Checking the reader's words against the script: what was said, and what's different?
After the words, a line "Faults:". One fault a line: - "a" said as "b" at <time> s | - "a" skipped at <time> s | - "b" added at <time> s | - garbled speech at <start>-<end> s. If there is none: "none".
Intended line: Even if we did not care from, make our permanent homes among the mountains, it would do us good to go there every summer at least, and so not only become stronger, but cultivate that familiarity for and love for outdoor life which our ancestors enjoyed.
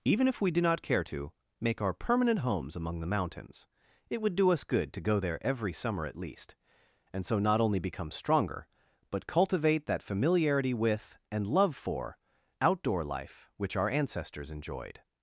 Even if we do not care to, make our permanent homes among the mountains, it would do us good to go there every summer at least, and so not only become stronger, but cultivate that familiarity with and love for outdoor life which our ancestors enjoyed.
Faults:
- "did" said as "do" at 0.5 s
- "from" said as "to" at 1.0 s
- "for" said as "with" at 10.7 s